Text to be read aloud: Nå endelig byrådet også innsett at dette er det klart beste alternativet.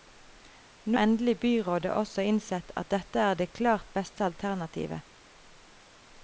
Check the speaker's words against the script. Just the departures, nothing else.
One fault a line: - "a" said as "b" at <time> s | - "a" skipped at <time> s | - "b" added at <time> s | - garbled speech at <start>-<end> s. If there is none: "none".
none